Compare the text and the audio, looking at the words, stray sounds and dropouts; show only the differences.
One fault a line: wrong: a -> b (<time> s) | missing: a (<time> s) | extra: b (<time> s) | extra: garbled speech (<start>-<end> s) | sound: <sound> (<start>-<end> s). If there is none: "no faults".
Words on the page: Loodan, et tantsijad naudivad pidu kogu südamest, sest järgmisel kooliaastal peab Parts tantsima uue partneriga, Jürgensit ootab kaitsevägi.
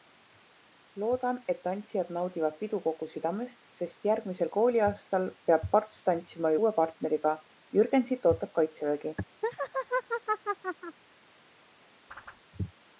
sound: laugh (9.4-11.0 s)
sound: whoosh (12.1-12.4 s)